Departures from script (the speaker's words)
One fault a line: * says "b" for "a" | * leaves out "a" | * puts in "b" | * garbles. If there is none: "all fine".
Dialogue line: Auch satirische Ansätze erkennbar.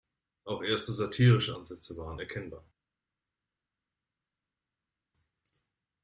* puts in "erste"
* puts in "waren"